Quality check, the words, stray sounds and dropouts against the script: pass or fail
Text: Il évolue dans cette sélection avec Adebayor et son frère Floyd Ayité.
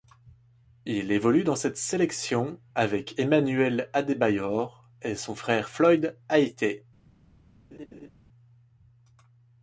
fail